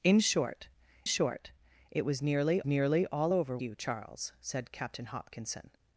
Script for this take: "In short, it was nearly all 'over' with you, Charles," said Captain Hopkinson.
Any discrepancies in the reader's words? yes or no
yes